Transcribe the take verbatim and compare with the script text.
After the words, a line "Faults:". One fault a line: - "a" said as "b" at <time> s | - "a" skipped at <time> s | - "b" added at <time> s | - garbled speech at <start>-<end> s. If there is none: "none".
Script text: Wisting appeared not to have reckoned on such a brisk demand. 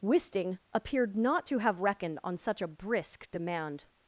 Wisting appeared not to have reckoned on such a brisk demand.
Faults:
none